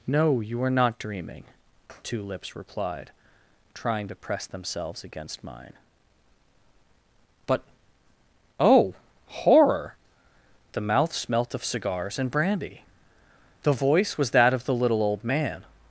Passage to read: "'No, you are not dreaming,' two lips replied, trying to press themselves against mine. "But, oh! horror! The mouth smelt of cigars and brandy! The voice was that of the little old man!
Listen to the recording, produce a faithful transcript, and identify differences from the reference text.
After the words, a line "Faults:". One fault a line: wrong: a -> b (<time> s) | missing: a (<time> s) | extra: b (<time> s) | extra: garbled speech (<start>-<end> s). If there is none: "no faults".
"'No, you are not dreaming,' two lips replied, trying to press themselves against mine. "But, oh! horror! The mouth smelt of cigars and brandy! The voice was that of the little old man!
Faults:
no faults